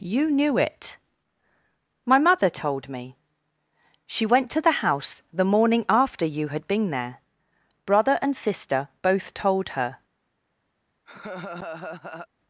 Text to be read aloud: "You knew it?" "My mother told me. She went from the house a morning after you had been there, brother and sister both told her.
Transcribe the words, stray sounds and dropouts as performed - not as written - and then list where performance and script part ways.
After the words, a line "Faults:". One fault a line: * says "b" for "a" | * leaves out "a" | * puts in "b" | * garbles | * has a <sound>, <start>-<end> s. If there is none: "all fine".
"You knew it?" "My mother told me. She went to the house the morning after you had been there, brother and sister both told her.
Faults:
* says "to" for "from"
* says "the" for "a"
* has a laugh, 11.1-12.3 s